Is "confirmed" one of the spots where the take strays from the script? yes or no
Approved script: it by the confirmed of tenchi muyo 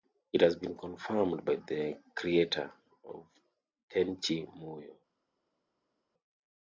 yes